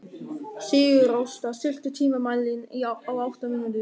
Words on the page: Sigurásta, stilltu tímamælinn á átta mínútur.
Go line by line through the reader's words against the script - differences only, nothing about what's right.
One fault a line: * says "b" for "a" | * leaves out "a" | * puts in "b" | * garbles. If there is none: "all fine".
all fine